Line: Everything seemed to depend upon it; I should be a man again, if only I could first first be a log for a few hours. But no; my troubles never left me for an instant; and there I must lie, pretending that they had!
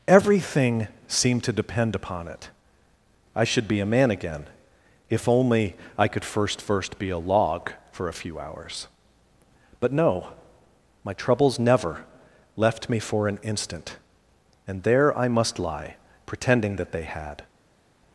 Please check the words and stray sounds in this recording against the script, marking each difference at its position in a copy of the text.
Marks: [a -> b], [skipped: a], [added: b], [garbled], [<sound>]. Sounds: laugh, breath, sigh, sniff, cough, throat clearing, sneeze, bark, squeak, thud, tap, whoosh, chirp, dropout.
Everything seemed to depend upon it; I should be a man again, if only I could first first be a log for a few hours. But no; my troubles never left me for an instant; and there I must lie, pretending that they had!